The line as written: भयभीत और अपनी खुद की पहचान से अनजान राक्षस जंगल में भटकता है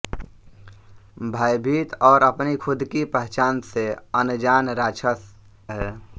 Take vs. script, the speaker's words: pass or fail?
fail